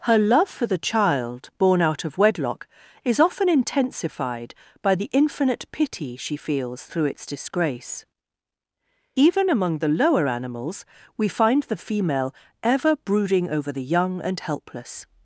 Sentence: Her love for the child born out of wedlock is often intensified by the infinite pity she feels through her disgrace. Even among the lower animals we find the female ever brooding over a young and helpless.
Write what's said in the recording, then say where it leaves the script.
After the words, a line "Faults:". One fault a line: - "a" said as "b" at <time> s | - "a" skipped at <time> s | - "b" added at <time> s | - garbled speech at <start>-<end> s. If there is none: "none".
Her love for the child born out of wedlock is often intensified by the infinite pity she feels through its disgrace. Even among the lower animals we find the female ever brooding over the young and helpless.
Faults:
- "her" said as "its" at 7.0 s
- "a" said as "the" at 13.7 s